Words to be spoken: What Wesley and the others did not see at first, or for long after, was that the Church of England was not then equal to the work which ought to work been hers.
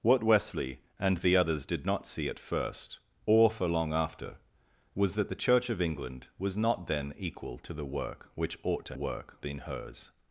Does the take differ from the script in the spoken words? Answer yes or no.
no